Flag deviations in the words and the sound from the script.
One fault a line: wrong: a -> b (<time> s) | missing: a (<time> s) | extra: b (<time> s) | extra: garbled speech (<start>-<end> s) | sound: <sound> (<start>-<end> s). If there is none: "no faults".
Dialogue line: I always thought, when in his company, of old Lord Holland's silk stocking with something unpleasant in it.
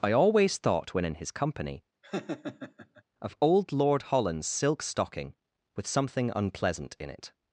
sound: laugh (2.0-3.0 s)